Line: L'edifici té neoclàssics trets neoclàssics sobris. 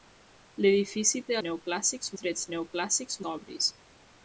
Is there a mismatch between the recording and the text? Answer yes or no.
no